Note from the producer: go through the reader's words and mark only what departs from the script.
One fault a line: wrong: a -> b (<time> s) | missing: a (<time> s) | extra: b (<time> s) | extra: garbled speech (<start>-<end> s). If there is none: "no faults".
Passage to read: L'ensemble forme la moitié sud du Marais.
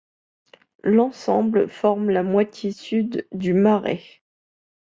no faults